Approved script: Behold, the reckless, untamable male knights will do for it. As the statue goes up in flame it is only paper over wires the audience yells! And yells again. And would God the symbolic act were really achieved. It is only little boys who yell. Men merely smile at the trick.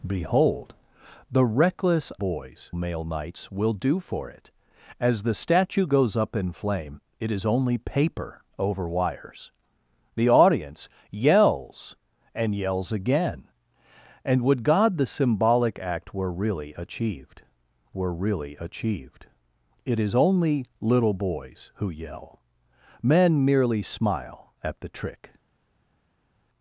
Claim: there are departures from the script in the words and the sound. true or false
true